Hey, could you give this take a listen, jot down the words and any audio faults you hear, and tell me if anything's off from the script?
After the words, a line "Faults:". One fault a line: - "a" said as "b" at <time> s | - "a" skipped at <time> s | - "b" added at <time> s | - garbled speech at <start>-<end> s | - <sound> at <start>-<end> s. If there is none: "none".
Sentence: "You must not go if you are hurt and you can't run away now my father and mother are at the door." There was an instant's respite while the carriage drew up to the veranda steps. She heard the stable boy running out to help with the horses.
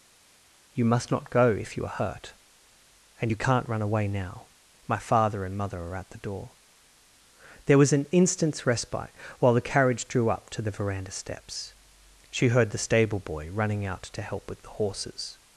"You must not go if you are hurt and you can't run away now my father and mother are at the door." There was an instant's respite while the carriage drew up to the veranda steps. She heard the stable boy running out to help with the horses.
Faults:
none